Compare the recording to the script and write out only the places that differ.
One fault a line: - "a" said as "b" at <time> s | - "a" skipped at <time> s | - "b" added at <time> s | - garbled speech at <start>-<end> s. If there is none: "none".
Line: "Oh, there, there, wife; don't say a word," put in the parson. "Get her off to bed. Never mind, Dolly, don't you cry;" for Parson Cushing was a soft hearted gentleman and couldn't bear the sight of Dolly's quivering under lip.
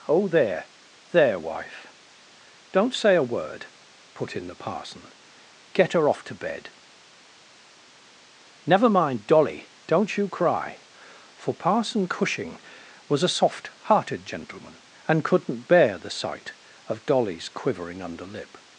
none